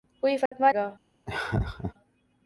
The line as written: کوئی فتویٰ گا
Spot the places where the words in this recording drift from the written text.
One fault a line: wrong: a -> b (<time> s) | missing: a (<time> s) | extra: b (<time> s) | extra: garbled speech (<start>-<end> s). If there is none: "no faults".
no faults